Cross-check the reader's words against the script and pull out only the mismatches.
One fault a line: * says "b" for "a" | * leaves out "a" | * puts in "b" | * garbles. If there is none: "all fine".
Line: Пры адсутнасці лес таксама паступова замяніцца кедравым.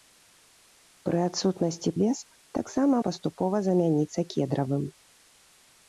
all fine